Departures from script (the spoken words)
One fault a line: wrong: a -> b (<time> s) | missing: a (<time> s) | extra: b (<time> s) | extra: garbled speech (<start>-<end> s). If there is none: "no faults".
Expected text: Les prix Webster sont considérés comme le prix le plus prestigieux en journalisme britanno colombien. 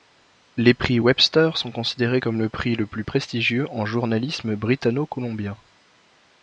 no faults